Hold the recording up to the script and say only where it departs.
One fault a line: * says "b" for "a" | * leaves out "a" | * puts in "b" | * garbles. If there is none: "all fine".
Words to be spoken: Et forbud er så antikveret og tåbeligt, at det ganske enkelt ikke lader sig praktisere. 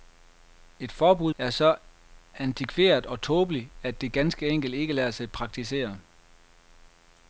all fine